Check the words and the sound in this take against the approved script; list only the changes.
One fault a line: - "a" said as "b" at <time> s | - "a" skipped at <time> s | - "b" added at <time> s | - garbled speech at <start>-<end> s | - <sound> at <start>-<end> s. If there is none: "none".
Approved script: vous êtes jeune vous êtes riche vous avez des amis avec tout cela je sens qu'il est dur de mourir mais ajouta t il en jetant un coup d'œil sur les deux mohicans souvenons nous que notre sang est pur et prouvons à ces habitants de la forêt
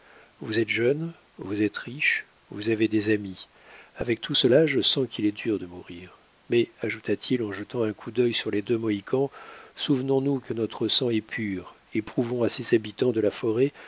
none